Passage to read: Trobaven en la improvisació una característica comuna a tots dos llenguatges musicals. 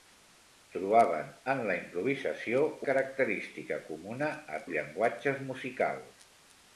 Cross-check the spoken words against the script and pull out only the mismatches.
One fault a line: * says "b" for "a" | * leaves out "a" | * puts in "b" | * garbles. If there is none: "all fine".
* leaves out "una"
* leaves out "tots dos"